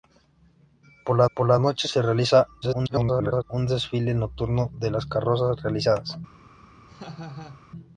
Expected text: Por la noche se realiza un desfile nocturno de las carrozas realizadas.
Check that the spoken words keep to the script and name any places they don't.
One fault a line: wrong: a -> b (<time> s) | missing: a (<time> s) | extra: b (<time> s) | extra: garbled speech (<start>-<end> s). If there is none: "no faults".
extra: por la (1.4 s)
extra: garbled speech (2.6-3.4 s)